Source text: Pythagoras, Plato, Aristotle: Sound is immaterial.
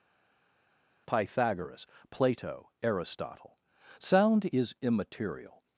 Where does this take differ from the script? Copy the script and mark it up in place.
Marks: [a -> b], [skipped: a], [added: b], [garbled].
Pythagoras, Plato, Aristotle: Sound is immaterial.